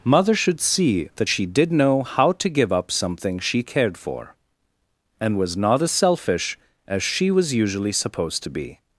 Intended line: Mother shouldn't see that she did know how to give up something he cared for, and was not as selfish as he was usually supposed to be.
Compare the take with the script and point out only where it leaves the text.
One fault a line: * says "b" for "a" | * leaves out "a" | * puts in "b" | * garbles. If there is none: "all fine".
* says "should" for "shouldn't"
* says "she" for "he"
* says "she" for "he"